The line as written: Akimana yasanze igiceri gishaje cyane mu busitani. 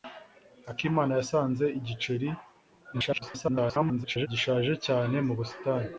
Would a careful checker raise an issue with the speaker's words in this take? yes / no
yes